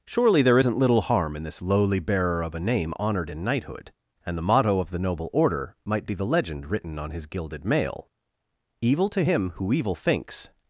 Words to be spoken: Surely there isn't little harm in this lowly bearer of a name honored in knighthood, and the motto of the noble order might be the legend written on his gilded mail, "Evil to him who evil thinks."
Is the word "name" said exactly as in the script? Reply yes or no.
yes